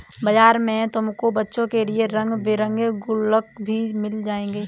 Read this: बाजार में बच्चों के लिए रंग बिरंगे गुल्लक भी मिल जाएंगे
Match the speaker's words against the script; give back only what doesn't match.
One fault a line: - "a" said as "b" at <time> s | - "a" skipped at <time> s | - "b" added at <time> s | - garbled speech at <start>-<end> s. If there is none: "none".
- "तुमको" added at 0.9 s